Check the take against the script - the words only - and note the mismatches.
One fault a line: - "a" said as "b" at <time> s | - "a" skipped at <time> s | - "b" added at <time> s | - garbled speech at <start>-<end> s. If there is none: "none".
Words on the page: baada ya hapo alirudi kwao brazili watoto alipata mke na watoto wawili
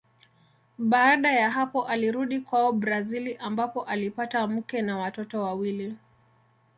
- "watoto" said as "ambapo" at 3.4 s